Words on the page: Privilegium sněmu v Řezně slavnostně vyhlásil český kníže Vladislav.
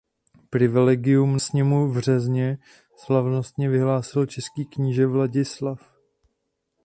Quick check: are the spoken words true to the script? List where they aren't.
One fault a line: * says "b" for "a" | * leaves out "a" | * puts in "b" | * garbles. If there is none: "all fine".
all fine